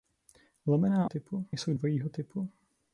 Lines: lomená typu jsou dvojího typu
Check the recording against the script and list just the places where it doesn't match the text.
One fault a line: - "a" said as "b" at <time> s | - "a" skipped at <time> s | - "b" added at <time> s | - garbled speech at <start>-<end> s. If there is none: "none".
none